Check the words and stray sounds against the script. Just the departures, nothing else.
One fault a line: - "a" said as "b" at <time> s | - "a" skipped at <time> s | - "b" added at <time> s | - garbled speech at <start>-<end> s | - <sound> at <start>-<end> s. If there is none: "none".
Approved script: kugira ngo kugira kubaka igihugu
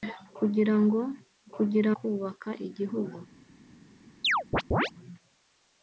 - chirp at 4.2-4.9 s